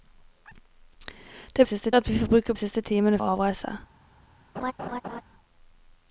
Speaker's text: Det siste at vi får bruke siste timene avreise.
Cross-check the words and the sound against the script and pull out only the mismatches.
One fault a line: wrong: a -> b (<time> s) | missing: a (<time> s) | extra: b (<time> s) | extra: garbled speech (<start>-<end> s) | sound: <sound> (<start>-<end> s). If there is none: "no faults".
sound: laugh (4.6-5.2 s)